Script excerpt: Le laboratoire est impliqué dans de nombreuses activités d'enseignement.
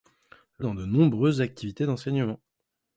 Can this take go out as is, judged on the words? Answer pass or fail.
fail